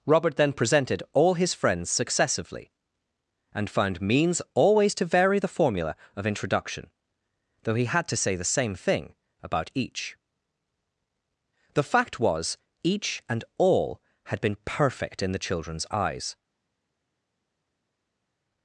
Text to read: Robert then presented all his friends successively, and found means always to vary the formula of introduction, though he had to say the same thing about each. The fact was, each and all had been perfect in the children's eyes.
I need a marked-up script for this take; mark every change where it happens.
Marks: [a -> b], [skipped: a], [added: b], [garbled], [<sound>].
Robert then presented all his friends successively, and found means always to vary the formula of introduction, though he had to say the same thing about each. The fact was, each and all had been perfect in the children's eyes.